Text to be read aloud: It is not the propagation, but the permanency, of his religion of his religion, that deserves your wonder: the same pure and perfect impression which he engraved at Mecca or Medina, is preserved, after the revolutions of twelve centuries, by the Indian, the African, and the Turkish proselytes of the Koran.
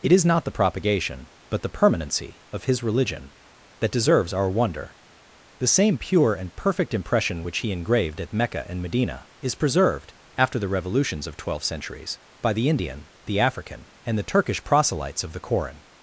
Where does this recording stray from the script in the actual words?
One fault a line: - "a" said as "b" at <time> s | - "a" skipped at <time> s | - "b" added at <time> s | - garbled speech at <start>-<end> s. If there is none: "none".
- "of his religion" skipped at 3.3 s
- "your" said as "our" at 4.3 s
- "or" said as "and" at 8.7 s